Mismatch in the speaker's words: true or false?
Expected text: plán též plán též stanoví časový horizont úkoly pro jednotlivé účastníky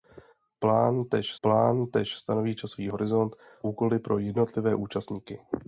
false